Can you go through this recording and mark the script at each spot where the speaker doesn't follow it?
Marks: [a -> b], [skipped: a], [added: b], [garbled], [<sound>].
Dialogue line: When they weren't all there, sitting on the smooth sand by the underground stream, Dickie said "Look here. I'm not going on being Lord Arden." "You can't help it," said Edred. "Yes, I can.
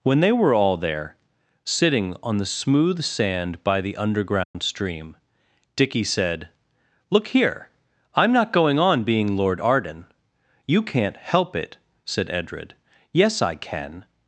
When they [weren't -> were] all there, sitting on the smooth sand by the underground [dropout] stream, Dickie said "Look here. I'm not going on being Lord Arden." "You can't help it," said Edred. "Yes, I can.